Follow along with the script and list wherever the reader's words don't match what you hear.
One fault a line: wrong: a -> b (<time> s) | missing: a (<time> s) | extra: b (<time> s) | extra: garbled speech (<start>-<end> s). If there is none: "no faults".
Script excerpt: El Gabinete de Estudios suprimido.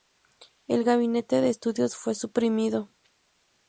extra: fue (1.9 s)